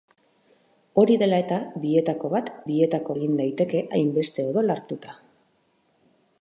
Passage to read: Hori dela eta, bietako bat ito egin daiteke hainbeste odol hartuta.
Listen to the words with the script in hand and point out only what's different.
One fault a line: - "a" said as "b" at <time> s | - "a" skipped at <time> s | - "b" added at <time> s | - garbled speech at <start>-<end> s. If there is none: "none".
- "ito" said as "bietako" at 2.7 s